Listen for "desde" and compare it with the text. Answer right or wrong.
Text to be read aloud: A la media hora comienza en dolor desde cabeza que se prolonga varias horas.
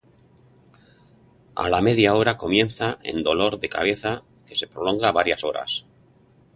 wrong